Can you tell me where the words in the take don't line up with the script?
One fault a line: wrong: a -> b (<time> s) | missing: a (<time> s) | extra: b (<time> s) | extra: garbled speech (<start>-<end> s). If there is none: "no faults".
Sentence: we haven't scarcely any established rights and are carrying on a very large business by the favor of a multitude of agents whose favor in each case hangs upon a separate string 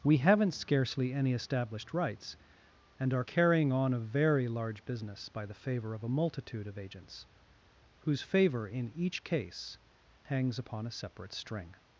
no faults